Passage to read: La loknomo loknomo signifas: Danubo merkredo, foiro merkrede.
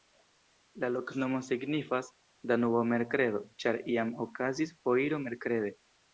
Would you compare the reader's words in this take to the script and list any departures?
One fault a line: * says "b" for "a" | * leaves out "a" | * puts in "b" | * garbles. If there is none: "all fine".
* leaves out "loknomo"
* puts in "ĉar iam okazis"